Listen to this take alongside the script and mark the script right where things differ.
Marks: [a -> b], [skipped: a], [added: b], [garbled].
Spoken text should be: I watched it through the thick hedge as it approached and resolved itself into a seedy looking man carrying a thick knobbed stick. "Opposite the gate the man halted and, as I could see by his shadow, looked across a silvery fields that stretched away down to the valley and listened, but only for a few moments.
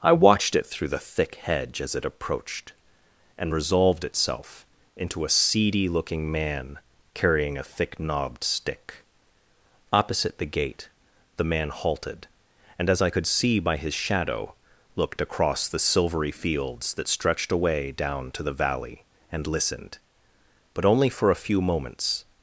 I watched it through the thick hedge as it approached and resolved itself into a seedy looking man carrying a thick knobbed stick. "Opposite the gate the man halted and, as I could see by his shadow, looked across [a -> the] silvery fields that stretched away down to the valley and listened, but only for a few moments.